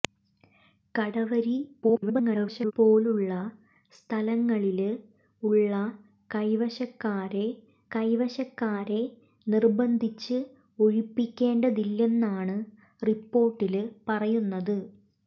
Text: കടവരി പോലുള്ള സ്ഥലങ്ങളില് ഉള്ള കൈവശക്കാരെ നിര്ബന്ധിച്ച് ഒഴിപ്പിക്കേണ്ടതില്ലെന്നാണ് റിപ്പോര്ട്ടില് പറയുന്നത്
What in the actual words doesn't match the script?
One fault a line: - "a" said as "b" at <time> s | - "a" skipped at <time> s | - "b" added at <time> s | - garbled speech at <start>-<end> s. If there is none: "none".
- garbled speech at 1.8-2.7 s
- "കൈവശക്കാരെ" added at 7.9 s